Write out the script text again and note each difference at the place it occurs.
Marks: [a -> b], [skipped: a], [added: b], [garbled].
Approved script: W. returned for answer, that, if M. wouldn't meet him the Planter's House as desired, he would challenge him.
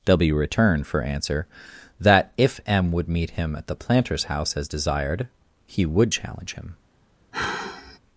W. returned for answer, that, if M. [wouldn't -> would] meet him [added: at] the Planter's House as desired, he would challenge him.